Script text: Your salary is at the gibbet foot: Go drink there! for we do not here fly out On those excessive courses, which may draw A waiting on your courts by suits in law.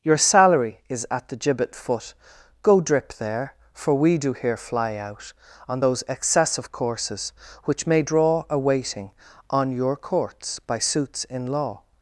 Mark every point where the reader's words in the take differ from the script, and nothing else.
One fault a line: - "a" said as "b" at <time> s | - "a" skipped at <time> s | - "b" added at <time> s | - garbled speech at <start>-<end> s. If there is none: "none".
- "drink" said as "drip" at 2.8 s
- "not" skipped at 4.3 s